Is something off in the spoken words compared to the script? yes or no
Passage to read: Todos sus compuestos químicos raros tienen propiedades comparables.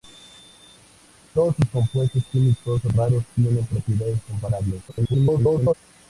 yes